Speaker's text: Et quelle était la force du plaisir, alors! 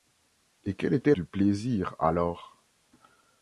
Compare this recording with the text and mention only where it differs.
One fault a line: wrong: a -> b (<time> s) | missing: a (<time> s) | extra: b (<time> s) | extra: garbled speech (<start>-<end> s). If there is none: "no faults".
missing: la force (1.1 s)